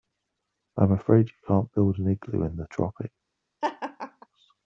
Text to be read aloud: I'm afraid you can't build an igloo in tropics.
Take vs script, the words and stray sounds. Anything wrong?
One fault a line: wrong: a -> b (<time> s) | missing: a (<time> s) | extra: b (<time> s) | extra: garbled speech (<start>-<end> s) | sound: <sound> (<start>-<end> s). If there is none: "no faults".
extra: the (2.6 s)
sound: laugh (3.6-4.3 s)